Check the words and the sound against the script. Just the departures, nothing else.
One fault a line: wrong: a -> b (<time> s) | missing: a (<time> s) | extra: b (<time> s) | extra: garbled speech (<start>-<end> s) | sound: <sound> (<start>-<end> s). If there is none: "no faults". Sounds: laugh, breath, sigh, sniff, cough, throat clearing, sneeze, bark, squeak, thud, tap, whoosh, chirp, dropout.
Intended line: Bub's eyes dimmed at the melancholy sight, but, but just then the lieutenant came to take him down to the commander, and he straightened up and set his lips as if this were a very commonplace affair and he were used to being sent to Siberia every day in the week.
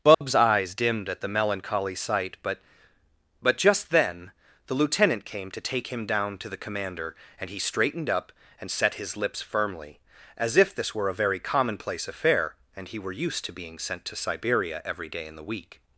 sound: dropout (0.1-0.2 s)
extra: firmly (9.4 s)